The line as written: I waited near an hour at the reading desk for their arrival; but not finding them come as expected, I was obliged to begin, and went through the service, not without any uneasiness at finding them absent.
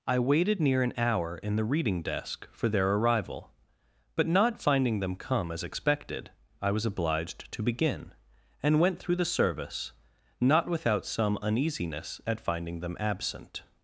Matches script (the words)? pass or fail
fail